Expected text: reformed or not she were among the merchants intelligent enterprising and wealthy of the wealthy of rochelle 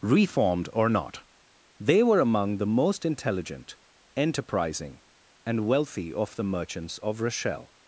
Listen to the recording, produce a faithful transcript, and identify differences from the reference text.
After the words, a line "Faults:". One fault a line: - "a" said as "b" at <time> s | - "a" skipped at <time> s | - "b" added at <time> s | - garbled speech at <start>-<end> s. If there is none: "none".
reformed or not they were among the most intelligent enterprising and wealthy of the merchants of rochelle
Faults:
- "she" said as "they" at 1.8 s
- "merchants" said as "most" at 2.6 s
- "wealthy" said as "merchants" at 6.4 s